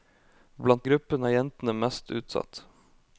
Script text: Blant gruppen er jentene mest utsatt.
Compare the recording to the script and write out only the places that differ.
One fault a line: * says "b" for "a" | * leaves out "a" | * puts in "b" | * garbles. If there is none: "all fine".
all fine